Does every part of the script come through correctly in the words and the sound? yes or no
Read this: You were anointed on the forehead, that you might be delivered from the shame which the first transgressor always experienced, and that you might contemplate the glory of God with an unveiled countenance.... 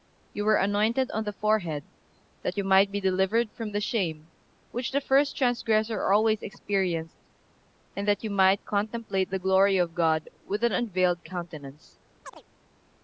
no